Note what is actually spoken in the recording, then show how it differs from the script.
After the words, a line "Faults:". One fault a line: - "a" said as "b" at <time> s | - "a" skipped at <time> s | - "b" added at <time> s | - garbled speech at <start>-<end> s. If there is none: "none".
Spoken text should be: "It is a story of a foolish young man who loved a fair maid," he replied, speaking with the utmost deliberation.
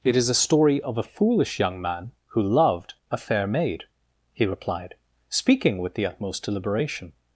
"It is a story of a foolish young man who loved a fair maid," he replied, speaking with the utmost deliberation.
Faults:
none